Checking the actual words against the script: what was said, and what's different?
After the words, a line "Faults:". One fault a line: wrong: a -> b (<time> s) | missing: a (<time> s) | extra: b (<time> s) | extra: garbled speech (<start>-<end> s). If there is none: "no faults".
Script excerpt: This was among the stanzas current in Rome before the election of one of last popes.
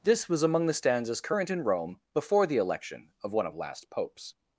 This was among the stanzas current in Rome before the election of one of last popes.
Faults:
no faults